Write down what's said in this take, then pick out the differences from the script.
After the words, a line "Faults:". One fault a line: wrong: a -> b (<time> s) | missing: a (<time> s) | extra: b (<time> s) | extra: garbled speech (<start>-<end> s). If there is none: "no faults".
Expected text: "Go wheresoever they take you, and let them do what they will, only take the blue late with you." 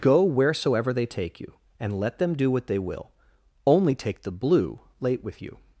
"Go wheresoever they take you, and let them do what they will, only take the blue late with you."
Faults:
no faults